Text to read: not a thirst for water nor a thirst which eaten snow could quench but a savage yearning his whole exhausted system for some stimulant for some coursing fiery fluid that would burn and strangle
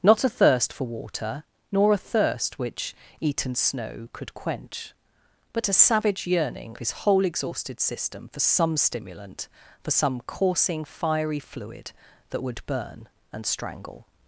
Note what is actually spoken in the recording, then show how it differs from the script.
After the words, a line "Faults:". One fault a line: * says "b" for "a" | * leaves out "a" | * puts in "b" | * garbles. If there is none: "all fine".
not a thirst for water nor a thirst which eaten snow could quench but a savage yearning his whole exhausted system for some stimulant for some coursing fiery fluid that would burn and strangle
Faults:
all fine